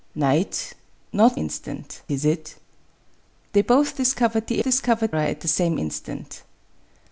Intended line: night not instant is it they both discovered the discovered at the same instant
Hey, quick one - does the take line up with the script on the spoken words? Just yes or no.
yes